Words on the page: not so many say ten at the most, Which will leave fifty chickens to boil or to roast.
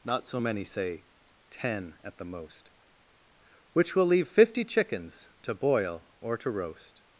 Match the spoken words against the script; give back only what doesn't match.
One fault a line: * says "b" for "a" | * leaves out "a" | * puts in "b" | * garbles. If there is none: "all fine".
all fine